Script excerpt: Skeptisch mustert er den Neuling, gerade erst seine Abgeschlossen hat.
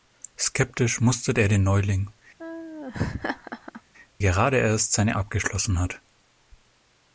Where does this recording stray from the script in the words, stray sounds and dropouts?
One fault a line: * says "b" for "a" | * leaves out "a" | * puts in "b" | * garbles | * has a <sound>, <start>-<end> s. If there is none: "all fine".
* has a laugh, 2.4-3.8 s